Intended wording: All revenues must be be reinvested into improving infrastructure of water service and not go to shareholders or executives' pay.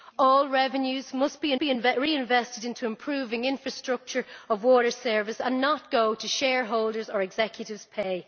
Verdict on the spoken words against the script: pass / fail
pass